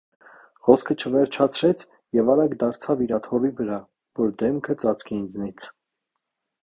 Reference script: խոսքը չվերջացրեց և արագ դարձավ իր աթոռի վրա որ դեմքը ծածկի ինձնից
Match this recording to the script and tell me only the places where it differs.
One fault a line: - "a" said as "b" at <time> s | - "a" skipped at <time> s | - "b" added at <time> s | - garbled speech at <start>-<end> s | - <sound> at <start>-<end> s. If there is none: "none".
none